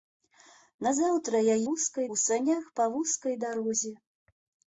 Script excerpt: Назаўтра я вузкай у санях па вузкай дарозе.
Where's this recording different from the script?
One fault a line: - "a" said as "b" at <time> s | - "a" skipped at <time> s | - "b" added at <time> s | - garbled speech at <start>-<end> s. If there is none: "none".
none